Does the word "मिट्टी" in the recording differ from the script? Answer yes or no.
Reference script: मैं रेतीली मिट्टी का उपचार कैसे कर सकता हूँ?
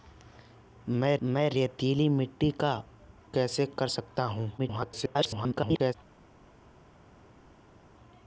no